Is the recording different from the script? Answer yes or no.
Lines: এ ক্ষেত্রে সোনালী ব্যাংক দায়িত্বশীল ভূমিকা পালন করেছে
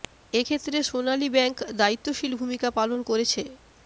no